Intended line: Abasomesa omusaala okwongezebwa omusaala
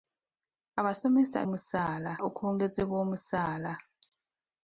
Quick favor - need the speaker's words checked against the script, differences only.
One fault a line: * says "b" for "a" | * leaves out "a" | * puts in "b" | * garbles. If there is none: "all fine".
all fine